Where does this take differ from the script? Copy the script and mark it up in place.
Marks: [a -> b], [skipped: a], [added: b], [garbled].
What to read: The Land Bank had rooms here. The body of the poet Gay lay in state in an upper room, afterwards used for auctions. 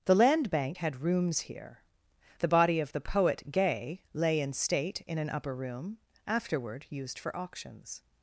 The Land Bank had rooms here. The body of the poet Gay lay in state in an upper room, [afterwards -> afterward] used for auctions.